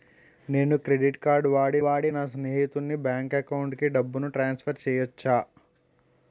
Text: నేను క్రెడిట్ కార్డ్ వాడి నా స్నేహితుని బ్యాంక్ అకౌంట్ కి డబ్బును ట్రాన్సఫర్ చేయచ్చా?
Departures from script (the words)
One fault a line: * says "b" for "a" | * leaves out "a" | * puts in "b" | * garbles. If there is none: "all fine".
* puts in "వాడి"